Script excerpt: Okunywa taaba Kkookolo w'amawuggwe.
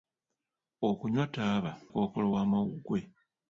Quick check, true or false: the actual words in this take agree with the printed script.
true